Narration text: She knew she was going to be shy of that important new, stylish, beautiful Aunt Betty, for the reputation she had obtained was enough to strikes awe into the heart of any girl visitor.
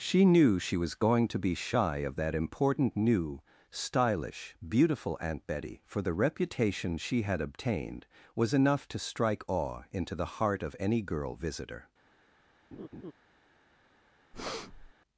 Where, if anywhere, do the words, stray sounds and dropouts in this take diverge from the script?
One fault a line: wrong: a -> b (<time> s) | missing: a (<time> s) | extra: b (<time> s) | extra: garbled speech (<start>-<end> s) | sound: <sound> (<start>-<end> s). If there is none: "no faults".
wrong: strikes -> strike (9.0 s)
sound: laugh (12.7-13.1 s)
sound: breath (14.3-14.9 s)